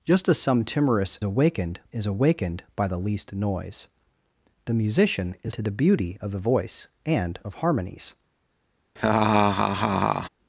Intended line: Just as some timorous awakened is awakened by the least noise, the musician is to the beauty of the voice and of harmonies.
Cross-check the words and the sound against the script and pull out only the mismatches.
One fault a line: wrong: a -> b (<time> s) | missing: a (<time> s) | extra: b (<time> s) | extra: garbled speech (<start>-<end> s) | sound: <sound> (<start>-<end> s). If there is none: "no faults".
sound: laugh (9.0-10.3 s)